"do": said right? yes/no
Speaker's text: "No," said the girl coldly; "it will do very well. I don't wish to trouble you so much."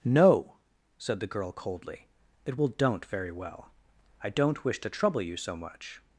no